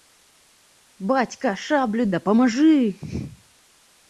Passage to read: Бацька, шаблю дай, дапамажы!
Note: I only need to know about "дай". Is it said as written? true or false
false